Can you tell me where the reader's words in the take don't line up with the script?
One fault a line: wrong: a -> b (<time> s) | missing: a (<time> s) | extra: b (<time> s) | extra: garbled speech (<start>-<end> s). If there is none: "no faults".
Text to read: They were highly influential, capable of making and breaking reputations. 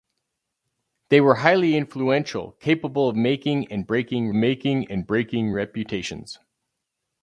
extra: making and breaking (4.3 s)